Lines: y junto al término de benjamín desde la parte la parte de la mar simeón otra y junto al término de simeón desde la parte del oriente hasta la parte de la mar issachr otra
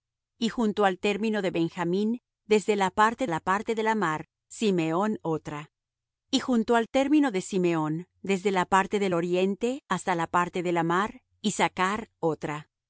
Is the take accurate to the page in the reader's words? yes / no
yes